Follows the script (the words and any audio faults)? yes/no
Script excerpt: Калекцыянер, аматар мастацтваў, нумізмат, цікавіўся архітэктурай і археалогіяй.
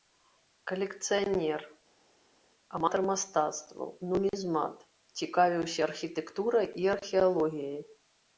yes